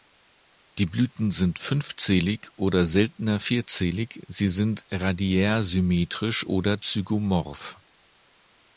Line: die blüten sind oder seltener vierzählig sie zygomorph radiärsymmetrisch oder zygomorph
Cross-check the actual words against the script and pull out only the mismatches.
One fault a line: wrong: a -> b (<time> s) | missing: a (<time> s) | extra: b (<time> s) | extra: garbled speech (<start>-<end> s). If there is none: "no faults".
extra: fünfzählig (1.6 s)
wrong: zygomorph -> sind (4.5 s)